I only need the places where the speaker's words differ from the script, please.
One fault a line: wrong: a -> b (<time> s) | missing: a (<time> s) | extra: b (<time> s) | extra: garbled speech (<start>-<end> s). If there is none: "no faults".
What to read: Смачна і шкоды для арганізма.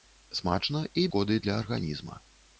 no faults